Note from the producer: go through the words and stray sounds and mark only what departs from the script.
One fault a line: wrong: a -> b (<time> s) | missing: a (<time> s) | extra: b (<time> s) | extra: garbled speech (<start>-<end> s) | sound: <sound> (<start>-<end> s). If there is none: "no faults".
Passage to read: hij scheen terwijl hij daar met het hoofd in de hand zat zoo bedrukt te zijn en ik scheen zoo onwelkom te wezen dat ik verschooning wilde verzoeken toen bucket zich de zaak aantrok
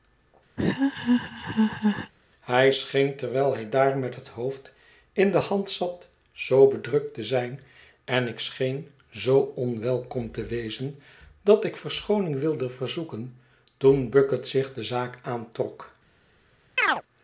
sound: laugh (0.6-2.1 s)
sound: chirp (16.8-17.0 s)